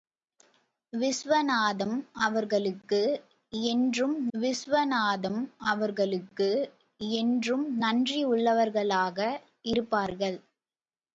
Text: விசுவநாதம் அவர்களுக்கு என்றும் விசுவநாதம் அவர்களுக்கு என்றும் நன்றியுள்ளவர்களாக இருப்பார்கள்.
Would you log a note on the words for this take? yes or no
no